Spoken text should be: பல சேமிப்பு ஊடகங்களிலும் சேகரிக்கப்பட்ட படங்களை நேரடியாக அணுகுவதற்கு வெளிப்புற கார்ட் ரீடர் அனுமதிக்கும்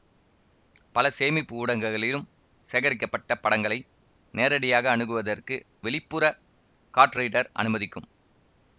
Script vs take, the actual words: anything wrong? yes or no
no